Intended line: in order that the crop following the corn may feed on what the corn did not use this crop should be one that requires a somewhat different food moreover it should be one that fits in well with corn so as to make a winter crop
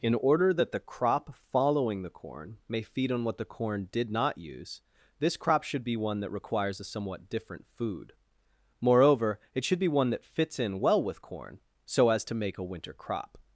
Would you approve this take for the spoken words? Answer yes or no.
yes